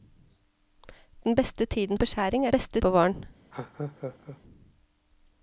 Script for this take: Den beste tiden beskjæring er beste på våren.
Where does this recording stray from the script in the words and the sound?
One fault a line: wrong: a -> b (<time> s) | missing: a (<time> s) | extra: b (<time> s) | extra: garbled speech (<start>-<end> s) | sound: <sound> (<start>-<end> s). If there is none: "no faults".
sound: laugh (3.5-4.4 s)